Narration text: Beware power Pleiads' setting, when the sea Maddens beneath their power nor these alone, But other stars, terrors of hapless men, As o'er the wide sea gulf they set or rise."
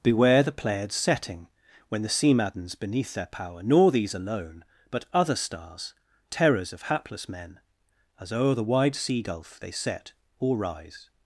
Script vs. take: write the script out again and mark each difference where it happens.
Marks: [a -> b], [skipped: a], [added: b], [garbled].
Beware [power -> the] Pleiads' setting, when the sea Maddens beneath their power nor these alone, But other stars, terrors of hapless men, As o'er the wide sea gulf they set or rise."